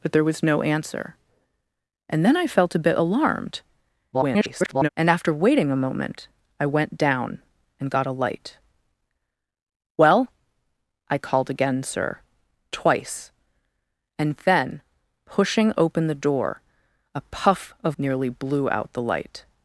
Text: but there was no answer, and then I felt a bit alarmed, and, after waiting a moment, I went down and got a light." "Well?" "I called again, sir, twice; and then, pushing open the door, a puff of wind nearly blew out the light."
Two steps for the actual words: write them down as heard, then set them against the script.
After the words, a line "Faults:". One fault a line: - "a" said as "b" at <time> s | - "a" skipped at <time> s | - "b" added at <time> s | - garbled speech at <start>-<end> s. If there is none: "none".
but there was no answer, and then I felt a bit alarmed, [garbled] and, after waiting a moment, I went down and got a light." "Well?" "I called again, sir, twice; and then, pushing open the door, a puff of nearly blew out the light."
Faults:
- garbled speech at 4.1-4.9 s
- "wind" skipped at 18.0 s